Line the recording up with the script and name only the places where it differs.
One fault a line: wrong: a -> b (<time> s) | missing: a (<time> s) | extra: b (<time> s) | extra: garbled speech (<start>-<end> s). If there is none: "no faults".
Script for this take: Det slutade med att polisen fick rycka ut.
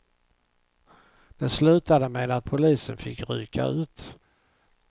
no faults